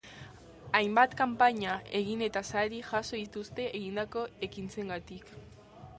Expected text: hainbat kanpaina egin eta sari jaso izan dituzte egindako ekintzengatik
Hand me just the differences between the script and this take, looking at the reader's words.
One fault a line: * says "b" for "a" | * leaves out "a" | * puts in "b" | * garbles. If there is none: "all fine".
* leaves out "izan"